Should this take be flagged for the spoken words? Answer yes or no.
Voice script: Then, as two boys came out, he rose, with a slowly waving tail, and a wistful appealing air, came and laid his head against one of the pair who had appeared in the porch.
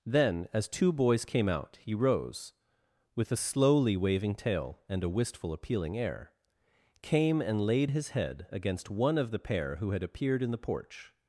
no